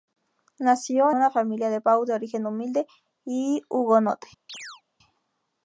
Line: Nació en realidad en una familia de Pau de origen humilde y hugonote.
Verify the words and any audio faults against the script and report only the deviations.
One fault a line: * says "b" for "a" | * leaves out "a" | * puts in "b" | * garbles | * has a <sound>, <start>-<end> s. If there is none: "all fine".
* leaves out "en realidad en"
* has a chirp, 4.5-4.8 s